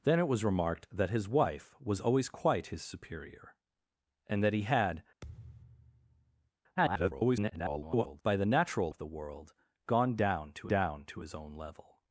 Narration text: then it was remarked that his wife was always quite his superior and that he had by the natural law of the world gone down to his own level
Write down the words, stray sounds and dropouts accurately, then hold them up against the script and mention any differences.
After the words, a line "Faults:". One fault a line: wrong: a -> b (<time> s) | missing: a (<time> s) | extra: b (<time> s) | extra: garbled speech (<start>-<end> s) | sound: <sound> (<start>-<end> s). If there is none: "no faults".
then it was remarked that his wife was always quite his superior and that he had [garbled] by the natural of the world gone down to down to his own level
Faults:
sound: thud (5.2-6.5 s)
extra: garbled speech (6.8-8.2 s)
missing: law (8.9 s)
extra: down to (10.6 s)